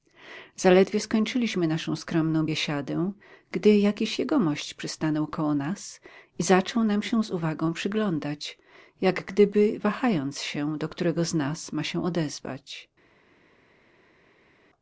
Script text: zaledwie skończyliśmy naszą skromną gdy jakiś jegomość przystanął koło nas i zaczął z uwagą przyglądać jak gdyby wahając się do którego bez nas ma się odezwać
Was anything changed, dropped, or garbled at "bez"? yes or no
yes